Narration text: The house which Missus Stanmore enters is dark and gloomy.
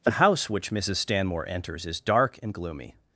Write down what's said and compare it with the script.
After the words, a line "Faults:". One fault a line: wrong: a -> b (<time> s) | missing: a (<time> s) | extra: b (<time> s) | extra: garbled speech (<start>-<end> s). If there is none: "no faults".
The house which Missus Stanmore enters is dark and gloomy.
Faults:
no faults